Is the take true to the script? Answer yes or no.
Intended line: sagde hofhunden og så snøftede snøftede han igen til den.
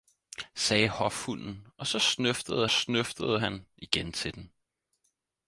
yes